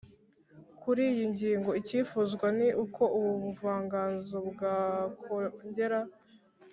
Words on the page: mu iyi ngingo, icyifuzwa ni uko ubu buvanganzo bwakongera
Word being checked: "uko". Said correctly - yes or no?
yes